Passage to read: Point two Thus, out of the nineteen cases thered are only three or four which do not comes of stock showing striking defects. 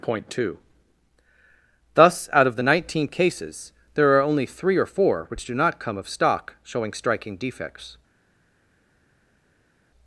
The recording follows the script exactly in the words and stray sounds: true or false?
false